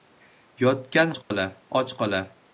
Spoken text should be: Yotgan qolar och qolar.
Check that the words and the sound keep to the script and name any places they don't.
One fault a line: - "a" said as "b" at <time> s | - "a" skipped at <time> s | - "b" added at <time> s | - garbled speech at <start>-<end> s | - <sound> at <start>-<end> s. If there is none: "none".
- dropout at 1.2-1.3 s